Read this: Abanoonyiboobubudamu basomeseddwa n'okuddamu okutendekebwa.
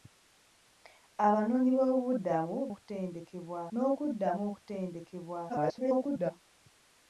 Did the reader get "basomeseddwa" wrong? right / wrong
wrong